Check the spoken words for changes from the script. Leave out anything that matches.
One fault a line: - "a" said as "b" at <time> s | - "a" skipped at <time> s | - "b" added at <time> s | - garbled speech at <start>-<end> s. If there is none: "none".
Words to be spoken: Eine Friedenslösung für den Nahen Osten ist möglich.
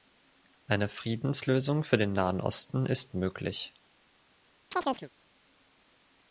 none